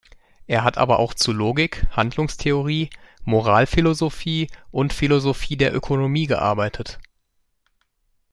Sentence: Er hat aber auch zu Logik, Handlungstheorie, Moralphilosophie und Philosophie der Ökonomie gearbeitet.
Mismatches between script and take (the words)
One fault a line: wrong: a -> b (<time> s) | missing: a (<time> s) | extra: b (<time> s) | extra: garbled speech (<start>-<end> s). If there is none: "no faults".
no faults